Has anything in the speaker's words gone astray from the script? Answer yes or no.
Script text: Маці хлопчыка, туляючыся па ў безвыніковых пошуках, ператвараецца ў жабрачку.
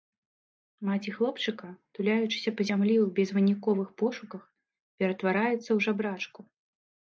yes